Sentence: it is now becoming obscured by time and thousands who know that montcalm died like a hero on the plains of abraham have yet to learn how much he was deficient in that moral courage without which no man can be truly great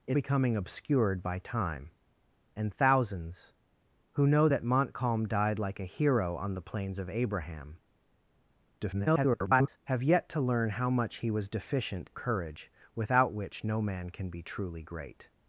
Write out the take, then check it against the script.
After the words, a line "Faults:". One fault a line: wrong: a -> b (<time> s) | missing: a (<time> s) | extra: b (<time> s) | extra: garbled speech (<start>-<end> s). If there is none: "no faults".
it becoming obscured by time and thousands who know that montcalm died like a hero on the plains of abraham [garbled] have yet to learn how much he was deficient courage without which no man can be truly great
Faults:
missing: is now (0.2 s)
extra: garbled speech (8.8-9.8 s)
missing: in that moral (12.1 s)